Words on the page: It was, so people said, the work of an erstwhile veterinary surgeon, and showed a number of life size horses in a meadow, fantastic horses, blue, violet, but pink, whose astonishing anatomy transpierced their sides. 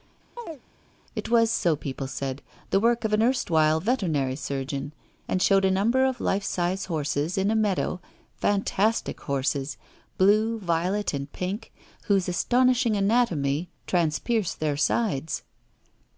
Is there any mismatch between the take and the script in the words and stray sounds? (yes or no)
yes